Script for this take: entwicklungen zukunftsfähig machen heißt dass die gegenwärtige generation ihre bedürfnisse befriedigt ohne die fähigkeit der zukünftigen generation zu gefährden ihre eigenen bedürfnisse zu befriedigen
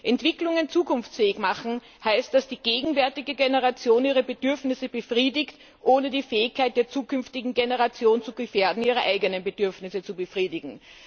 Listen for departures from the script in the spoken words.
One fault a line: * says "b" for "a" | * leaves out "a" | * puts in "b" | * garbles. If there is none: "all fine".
all fine